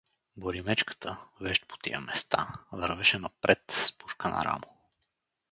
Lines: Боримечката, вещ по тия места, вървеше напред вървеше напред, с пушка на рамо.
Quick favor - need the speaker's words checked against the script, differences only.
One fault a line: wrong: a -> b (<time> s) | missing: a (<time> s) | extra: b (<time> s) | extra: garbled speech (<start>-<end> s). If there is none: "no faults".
missing: вървеше напред (3.6 s)